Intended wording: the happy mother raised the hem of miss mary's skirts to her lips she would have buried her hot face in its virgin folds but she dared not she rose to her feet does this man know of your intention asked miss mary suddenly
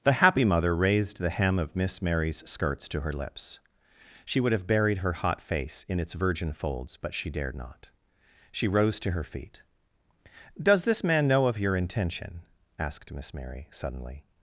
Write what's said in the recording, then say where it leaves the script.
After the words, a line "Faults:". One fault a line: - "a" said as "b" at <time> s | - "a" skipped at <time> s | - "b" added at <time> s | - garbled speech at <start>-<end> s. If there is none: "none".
the happy mother raised the hem of miss mary's skirts to her lips she would have buried her hot face in its virgin folds but she dared not she rose to her feet does this man know of your intention asked miss mary suddenly
Faults:
none